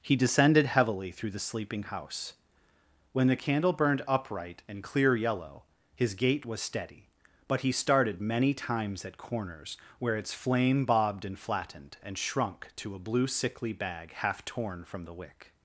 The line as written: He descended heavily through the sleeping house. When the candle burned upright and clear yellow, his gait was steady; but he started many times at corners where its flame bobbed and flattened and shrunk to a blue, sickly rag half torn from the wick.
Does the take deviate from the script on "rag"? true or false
true